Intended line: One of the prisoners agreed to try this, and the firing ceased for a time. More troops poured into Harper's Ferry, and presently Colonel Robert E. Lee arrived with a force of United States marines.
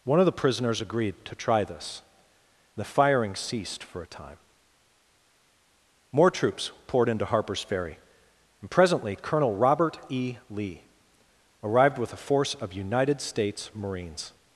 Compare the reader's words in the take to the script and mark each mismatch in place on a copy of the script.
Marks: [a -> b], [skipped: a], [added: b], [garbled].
One of the prisoners agreed to try this, [skipped: and] the firing ceased for a time. More troops poured into Harper's Ferry, and presently Colonel Robert E. Lee arrived with a force of United States marines.